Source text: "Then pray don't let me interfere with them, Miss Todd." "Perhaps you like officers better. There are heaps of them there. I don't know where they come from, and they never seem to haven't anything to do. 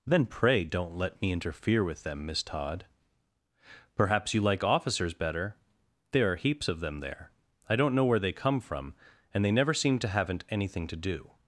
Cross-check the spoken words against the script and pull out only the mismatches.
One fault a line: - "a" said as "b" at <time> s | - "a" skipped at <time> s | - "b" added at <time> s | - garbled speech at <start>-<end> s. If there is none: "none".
none